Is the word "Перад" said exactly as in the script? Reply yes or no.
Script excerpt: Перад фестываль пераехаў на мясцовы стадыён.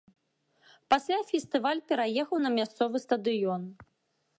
no